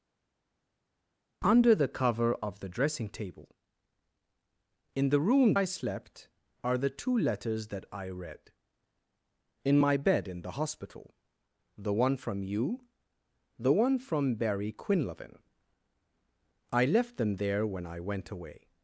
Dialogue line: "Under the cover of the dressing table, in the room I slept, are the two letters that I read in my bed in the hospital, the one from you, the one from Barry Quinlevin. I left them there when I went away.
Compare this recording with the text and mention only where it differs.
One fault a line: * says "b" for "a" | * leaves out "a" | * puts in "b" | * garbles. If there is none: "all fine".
all fine